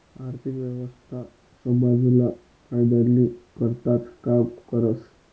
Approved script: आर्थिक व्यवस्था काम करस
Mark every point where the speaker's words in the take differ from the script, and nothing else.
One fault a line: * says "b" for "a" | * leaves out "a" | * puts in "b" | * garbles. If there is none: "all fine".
* puts in "समाजना फायदानी करताच"